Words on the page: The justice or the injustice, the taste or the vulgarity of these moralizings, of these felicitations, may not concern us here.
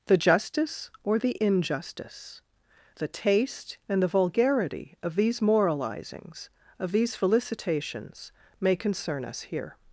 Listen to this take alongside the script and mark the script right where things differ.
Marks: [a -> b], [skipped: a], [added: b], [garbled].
The justice or the injustice, the taste [or -> and] the vulgarity of these moralizings, of these felicitations, may [skipped: not] concern us here.